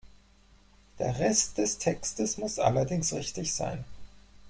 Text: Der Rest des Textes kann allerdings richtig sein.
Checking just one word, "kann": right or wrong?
wrong